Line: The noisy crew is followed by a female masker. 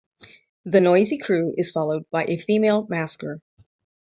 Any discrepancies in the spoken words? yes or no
no